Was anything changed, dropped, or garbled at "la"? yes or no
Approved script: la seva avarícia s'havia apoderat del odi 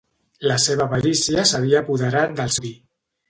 no